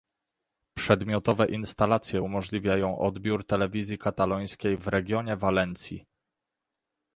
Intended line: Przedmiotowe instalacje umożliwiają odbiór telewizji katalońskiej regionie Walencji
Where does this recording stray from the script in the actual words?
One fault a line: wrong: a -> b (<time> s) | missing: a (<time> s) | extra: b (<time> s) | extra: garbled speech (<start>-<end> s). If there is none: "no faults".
extra: w (4.8 s)